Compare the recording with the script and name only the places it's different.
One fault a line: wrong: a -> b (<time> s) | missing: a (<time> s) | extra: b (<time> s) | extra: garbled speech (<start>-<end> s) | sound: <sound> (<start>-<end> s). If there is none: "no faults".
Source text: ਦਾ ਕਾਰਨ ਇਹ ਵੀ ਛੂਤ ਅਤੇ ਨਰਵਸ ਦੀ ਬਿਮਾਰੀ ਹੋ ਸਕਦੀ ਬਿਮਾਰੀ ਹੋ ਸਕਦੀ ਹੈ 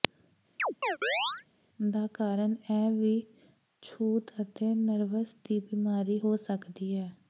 sound: chirp (0.6-1.5 s)
missing: ਬਿਮਾਰੀ ਹੋ ਸਕਦੀ (6.9 s)